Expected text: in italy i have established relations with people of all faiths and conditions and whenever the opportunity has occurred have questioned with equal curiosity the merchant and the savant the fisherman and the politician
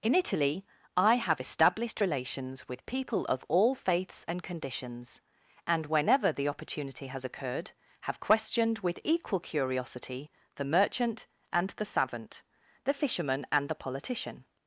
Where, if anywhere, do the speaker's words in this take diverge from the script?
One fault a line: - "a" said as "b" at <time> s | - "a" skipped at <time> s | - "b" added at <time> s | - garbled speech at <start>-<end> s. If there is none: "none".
none